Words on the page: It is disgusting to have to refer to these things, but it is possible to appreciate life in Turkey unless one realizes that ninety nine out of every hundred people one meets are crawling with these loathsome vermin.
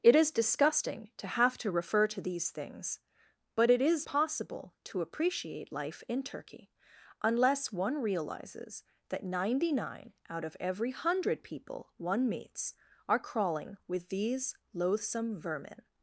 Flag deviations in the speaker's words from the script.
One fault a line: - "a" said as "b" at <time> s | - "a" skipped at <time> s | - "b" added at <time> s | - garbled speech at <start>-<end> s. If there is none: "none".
none